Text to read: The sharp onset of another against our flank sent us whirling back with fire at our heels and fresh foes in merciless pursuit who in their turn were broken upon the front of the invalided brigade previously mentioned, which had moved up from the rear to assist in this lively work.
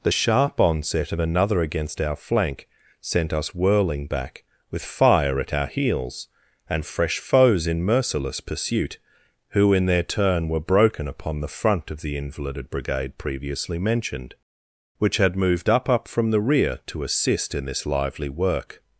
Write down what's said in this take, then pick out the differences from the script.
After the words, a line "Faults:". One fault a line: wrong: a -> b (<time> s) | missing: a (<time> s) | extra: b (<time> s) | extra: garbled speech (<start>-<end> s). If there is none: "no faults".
The sharp onset of another against our flank sent us whirling back with fire at our heels and fresh foes in merciless pursuit who in their turn were broken upon the front of the invalided brigade previously mentioned, which had moved up up from the rear to assist in this lively work.
Faults:
extra: up (15.9 s)